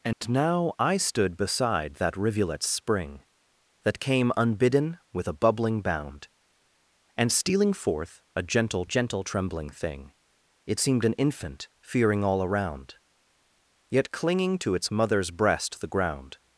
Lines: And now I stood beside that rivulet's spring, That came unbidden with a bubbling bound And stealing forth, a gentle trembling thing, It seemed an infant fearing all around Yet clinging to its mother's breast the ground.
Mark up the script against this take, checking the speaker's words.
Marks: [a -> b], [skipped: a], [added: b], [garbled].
And now I stood beside that rivulet's spring, That came unbidden with a bubbling bound And stealing forth, a gentle [added: gentle] trembling thing, It seemed an infant fearing all around Yet clinging to its mother's breast the ground.